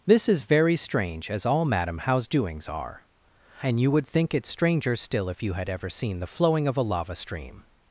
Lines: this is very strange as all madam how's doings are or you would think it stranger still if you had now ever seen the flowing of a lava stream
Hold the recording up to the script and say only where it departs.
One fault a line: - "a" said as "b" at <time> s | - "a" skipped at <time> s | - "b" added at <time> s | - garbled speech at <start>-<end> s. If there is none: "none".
- "or" said as "and" at 3.6 s
- "now" skipped at 5.7 s